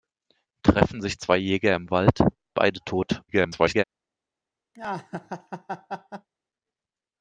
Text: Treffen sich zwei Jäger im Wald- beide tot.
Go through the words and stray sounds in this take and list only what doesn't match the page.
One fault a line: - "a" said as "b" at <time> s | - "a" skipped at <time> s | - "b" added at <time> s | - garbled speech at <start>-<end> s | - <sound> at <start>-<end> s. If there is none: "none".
- garbled speech at 3.3-3.8 s
- laugh at 4.7-6.3 s